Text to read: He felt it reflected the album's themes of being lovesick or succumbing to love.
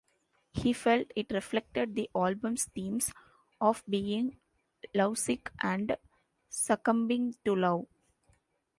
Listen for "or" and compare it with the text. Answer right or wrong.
wrong